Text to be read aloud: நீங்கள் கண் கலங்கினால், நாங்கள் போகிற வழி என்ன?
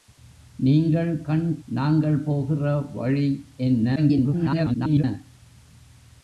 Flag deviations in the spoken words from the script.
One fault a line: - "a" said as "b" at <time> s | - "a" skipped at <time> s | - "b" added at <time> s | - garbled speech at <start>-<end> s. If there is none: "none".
- "கலங்கினால்" skipped at 1.6 s
- garbled speech at 4.0-5.0 s